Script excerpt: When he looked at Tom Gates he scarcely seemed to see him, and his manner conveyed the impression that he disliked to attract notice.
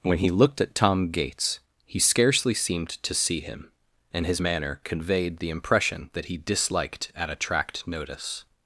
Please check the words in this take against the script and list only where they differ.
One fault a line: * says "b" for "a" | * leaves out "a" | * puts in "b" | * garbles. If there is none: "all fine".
* says "at" for "to"